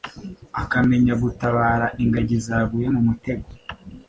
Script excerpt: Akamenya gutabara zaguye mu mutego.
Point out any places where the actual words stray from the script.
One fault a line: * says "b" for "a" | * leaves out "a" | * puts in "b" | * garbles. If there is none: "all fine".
* puts in "ingagi"